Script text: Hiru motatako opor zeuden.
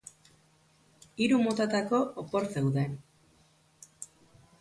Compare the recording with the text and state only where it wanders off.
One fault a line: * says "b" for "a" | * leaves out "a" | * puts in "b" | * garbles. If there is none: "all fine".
all fine